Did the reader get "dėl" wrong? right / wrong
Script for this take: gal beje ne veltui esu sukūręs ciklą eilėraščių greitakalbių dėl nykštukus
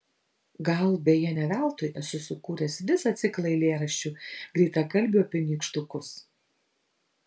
wrong